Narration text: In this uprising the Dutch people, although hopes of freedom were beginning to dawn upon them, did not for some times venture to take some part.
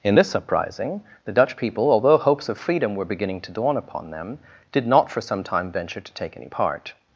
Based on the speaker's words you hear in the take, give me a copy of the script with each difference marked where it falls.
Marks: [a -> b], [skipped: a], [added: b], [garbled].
In this uprising the Dutch people, although hopes of freedom were beginning to dawn upon them, did not for some [times -> time] venture to take [some -> any] part.